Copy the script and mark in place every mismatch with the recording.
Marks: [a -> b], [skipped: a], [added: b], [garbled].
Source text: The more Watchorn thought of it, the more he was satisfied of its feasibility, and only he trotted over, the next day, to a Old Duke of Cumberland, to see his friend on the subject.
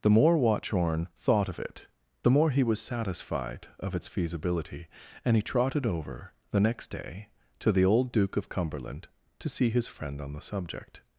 The more Watchorn thought of it, the more he was satisfied of its feasibility, and [skipped: only] he trotted over, the next day, to [a -> the] Old Duke of Cumberland, to see his friend on the subject.